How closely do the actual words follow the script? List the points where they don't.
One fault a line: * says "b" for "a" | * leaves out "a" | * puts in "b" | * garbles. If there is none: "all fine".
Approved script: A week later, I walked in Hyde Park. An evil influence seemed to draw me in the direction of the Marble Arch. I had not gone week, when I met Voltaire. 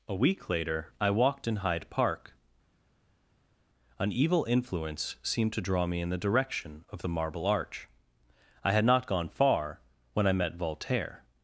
* says "far" for "week"